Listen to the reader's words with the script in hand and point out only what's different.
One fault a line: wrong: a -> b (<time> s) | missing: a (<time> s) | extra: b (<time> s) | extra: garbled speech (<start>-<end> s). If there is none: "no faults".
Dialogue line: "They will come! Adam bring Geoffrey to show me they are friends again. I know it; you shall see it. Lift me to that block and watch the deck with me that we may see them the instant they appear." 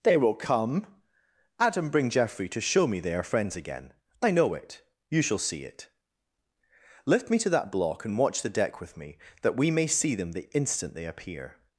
no faults